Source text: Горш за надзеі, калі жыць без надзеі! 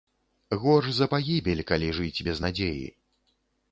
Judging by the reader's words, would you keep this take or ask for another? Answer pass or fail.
fail